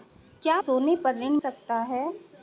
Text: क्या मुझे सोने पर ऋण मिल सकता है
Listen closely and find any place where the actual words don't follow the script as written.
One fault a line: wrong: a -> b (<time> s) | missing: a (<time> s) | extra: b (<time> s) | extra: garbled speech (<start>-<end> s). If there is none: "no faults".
missing: मुझे (0.6 s)
missing: मिल (1.4 s)